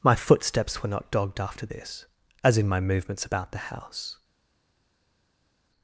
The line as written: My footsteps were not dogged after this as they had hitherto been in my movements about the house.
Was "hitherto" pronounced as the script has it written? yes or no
no